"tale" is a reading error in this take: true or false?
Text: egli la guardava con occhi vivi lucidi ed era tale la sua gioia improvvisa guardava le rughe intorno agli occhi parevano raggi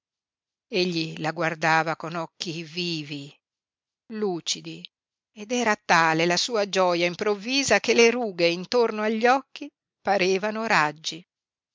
false